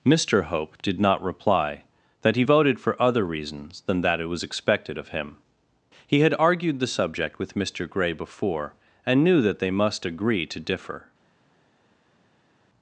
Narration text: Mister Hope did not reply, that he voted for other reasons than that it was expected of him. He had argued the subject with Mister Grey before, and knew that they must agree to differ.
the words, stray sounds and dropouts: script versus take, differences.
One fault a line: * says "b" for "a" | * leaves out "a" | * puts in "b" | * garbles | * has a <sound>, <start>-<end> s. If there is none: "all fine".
all fine